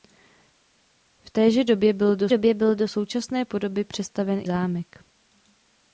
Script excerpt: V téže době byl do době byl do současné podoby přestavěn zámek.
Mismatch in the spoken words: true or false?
false